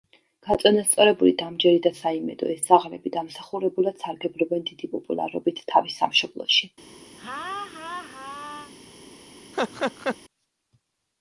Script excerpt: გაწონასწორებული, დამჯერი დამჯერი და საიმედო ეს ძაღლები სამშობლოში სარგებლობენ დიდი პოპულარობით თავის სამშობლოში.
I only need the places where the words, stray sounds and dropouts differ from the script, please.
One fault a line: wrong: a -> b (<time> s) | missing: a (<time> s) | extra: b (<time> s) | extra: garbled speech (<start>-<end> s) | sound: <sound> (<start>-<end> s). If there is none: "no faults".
missing: დამჯერი (1.8 s)
wrong: სამშობლოში -> დამსახურებულად (3.2 s)
sound: laugh (7.2-8.7 s)
sound: laugh (9.5-10.2 s)